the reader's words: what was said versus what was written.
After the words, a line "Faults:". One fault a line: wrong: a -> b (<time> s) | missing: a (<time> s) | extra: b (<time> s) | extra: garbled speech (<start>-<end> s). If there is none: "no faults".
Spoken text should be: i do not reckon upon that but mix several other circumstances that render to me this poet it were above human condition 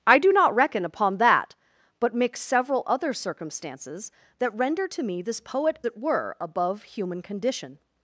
i do not reckon upon that but mix several other circumstances that render to me this poet it were above human condition
Faults:
no faults